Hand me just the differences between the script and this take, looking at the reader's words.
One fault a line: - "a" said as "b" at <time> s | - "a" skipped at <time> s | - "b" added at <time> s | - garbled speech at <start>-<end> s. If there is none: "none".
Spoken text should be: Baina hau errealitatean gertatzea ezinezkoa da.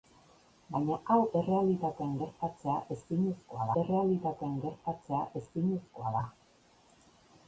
- "errealitatean gertatzea ezinezkoa" added at 3.8 s